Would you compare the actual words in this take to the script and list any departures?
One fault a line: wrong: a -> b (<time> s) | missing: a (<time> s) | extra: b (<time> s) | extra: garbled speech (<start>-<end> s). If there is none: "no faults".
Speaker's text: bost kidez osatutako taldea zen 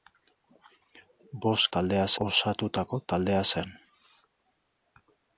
wrong: kidez -> taldea (1.8 s)